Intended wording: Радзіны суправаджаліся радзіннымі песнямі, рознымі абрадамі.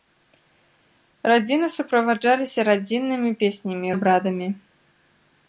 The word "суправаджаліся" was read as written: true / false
true